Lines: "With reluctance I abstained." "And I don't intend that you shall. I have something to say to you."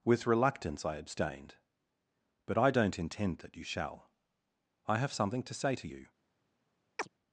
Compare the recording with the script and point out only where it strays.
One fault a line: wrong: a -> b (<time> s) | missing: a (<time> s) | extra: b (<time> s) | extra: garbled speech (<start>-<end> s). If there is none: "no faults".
wrong: And -> But (2.5 s)